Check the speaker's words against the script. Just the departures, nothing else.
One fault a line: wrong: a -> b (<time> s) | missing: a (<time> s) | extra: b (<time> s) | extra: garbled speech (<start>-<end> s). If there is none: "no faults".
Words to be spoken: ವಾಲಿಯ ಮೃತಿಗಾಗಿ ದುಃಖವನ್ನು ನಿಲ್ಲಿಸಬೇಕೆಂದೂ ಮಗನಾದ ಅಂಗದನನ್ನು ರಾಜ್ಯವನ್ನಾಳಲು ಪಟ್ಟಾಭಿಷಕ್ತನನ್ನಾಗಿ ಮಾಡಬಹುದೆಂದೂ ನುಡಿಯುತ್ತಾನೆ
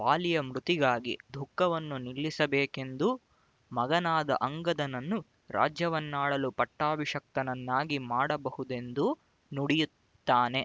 no faults